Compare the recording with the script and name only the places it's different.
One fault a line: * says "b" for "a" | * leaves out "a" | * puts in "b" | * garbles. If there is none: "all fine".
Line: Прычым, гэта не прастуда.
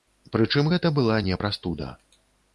* puts in "была"